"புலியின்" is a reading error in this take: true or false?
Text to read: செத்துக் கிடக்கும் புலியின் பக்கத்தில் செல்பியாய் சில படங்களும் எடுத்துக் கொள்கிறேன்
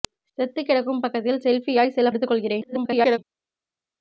true